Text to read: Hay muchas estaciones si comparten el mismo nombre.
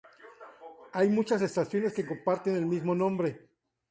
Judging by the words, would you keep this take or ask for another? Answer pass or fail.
fail